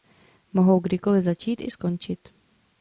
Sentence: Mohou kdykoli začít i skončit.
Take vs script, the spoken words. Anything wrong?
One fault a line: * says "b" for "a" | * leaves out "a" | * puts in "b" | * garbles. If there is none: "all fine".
all fine